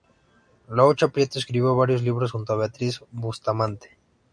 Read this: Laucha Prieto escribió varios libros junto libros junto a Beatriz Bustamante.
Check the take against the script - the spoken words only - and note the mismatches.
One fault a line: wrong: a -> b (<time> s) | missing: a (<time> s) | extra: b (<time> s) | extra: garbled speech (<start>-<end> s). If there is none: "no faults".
missing: libros junto (2.5 s)